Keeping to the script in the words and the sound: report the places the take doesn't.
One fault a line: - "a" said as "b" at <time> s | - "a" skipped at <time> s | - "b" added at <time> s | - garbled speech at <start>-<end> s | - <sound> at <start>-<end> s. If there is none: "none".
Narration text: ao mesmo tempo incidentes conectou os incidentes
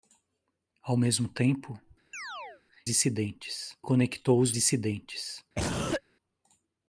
- chirp at 2.1-2.6 s
- cough at 5.5-6.0 s